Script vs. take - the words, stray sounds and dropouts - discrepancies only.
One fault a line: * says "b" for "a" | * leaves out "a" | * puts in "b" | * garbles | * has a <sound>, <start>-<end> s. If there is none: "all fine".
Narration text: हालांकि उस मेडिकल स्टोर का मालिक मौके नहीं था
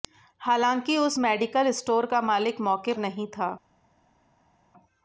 all fine